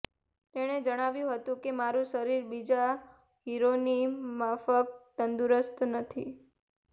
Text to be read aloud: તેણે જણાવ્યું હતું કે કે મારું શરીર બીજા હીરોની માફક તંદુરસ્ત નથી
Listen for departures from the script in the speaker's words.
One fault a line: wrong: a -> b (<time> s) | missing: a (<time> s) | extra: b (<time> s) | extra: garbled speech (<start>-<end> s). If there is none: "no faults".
missing: કે (1.7 s)